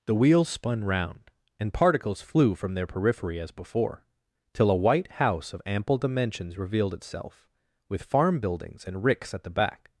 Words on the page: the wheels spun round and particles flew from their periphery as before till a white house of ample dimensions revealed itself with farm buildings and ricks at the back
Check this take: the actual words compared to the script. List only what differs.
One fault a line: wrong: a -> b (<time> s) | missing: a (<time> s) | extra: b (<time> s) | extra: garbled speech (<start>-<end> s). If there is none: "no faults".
no faults